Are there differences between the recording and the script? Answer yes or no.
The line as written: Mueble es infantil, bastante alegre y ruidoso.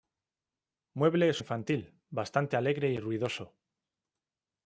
no